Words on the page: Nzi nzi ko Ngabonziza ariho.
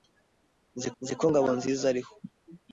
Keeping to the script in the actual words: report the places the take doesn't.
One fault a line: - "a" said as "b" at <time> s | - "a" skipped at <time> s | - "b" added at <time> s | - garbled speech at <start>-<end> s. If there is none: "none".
none